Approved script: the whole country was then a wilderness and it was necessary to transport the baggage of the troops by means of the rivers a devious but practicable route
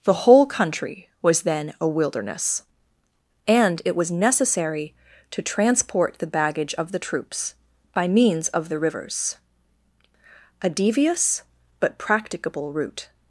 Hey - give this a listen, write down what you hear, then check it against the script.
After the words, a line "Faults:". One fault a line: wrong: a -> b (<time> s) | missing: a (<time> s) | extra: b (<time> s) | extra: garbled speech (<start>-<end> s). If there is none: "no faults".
the whole country was then a wilderness and it was necessary to transport the baggage of the troops by means of the rivers a devious but practicable route
Faults:
no faults